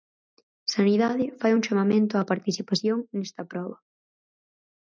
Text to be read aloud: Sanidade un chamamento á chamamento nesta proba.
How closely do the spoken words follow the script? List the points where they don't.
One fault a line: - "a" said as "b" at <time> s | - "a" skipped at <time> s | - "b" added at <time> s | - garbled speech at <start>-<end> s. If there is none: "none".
- "fai" added at 1.4 s
- "chamamento" said as "participación" at 2.3 s